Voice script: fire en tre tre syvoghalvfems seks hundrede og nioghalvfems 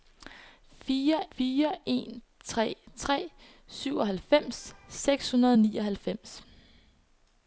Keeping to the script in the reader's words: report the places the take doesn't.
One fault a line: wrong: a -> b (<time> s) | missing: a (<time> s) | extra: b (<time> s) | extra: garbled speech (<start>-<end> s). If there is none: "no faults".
extra: fire (1.4 s)